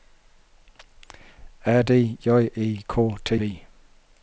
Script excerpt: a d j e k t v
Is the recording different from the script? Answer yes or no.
no